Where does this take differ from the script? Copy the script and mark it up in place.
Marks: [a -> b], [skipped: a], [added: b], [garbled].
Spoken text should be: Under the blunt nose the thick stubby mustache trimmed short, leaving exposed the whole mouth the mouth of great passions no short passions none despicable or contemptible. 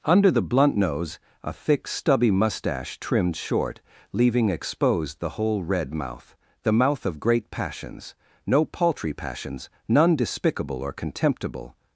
Under the blunt nose [the -> a] thick stubby mustache trimmed short, leaving exposed the whole [added: red] mouth the mouth of great passions no [short -> paltry] passions none despicable or contemptible.